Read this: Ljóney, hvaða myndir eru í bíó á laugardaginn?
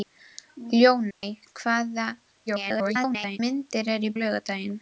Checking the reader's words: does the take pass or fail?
fail